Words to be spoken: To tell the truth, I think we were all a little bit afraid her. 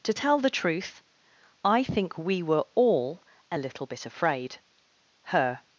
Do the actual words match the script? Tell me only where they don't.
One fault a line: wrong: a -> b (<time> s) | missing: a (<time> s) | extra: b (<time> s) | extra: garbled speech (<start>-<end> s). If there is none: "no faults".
no faults